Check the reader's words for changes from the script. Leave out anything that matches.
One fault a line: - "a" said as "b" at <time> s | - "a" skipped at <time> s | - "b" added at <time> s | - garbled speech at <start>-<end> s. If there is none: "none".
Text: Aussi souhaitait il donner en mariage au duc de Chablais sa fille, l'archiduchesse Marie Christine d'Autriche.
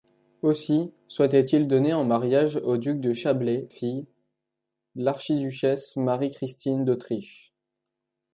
- "sa" skipped at 3.7 s